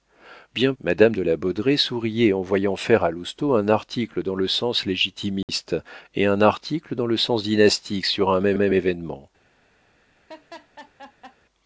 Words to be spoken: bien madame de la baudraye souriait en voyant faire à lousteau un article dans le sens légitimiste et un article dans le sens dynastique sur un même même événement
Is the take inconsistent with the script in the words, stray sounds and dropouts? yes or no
yes